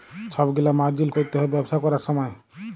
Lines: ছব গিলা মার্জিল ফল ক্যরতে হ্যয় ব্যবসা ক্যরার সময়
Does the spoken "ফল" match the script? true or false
false